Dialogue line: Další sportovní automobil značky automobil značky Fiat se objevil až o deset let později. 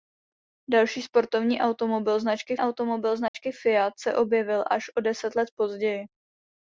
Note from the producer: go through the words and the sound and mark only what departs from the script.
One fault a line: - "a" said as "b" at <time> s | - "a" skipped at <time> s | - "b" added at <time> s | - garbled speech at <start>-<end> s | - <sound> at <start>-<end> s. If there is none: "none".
- dropout at 3.3-3.3 s